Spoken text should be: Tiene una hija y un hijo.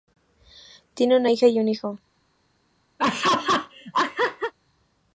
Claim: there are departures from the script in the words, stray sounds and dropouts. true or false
true